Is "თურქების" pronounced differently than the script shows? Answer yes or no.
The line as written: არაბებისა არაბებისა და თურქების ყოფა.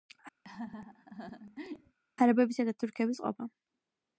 no